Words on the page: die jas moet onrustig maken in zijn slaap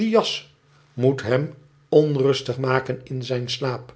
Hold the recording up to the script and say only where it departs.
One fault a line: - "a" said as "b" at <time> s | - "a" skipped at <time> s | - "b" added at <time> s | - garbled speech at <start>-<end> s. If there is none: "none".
- "hem" added at 1.2 s